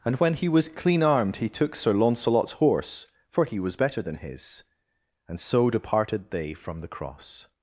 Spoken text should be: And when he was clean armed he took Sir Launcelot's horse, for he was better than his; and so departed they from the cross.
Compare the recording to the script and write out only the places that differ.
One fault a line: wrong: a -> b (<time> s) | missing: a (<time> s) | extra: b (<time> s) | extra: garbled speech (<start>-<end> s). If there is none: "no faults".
no faults